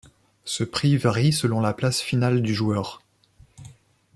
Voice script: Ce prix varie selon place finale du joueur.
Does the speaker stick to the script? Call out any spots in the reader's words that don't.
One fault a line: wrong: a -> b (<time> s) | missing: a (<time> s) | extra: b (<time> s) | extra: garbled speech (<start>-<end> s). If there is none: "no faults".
extra: la (1.6 s)